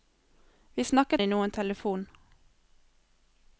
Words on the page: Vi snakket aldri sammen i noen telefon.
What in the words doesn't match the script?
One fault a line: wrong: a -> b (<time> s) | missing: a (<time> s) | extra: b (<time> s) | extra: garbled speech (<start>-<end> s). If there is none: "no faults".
missing: aldri sammen (1.2 s)